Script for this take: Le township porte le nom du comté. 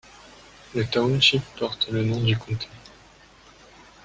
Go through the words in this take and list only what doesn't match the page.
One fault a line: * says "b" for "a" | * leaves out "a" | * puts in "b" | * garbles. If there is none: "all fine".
all fine